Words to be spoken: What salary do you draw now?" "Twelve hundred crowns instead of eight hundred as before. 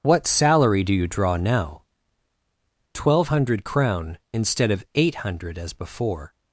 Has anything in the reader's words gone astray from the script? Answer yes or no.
yes